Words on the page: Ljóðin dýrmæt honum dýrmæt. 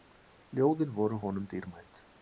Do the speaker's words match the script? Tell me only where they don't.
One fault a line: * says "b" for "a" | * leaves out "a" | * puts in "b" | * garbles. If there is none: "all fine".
* says "voru" for "dýrmæt"